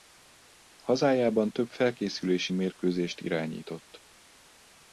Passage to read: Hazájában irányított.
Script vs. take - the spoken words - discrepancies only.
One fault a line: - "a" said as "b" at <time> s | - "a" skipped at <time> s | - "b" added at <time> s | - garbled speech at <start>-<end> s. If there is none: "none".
- "több felkészülési mérkőzést" added at 1.5 s